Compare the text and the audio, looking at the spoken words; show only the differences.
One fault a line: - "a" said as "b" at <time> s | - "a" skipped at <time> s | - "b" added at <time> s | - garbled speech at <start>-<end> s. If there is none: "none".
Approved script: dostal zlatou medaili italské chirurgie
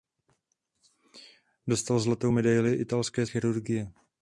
none